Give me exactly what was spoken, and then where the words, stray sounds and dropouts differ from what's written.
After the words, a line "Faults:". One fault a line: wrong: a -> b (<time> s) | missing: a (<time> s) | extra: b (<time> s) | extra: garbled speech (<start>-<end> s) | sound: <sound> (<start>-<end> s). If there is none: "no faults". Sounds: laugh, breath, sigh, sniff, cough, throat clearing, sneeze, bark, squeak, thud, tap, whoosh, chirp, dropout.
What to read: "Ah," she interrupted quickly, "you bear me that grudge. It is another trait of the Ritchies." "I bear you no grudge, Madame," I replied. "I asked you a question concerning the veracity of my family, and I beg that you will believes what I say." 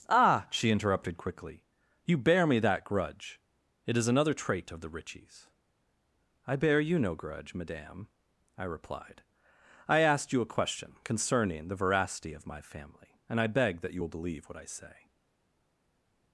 "Ah," she interrupted quickly, "you bear me that grudge. It is another trait of the Ritchies." "I bear you no grudge, Madame," I replied. "I asked you a question concerning the veracity of my family, and I beg that you will believe what I say."
Faults:
wrong: believes -> believe (14.1 s)